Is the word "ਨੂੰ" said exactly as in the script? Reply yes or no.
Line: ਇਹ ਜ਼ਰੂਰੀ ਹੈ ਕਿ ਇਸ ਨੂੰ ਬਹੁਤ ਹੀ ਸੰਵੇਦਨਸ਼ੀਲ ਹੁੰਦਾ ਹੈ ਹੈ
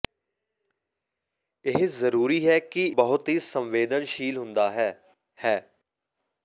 no